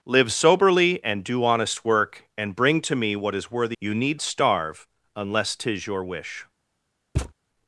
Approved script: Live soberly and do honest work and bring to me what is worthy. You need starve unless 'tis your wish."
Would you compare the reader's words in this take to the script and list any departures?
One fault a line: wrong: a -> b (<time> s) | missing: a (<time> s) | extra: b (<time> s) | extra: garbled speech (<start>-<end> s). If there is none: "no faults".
no faults